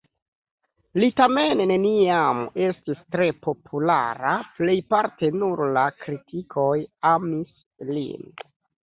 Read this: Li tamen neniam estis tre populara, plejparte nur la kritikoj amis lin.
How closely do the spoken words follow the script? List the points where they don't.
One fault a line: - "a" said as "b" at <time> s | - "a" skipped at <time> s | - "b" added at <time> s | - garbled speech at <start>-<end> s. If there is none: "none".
none